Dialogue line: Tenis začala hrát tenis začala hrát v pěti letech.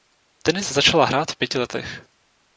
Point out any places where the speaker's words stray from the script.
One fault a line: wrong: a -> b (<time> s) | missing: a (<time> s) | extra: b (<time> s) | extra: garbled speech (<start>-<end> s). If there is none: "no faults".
missing: tenis začala hrát (1.3 s)